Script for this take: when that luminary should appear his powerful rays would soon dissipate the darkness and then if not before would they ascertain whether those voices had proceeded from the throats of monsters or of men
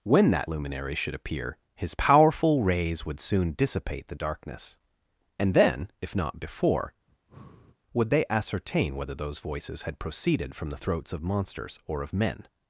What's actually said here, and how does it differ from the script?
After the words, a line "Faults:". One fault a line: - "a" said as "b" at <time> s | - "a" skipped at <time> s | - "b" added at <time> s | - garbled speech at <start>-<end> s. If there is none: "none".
when that luminary should appear his powerful rays would soon dissipate the darkness and then if not before would they ascertain whether those voices had proceeded from the throats of monsters or of men
Faults:
none